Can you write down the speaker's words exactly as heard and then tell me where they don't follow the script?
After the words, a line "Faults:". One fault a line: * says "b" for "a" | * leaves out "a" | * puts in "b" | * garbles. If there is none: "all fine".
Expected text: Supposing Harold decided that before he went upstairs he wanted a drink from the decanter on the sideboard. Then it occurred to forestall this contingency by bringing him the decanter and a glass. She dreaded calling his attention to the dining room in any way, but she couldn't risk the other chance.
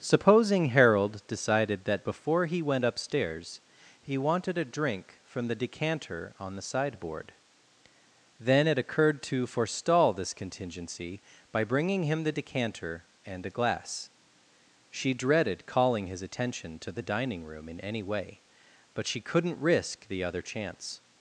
Supposing Harold decided that before he went upstairs he wanted a drink from the decanter on the sideboard. Then it occurred to forestall this contingency by bringing him the decanter and a glass. She dreaded calling his attention to the dining room in any way, but she couldn't risk the other chance.
Faults:
all fine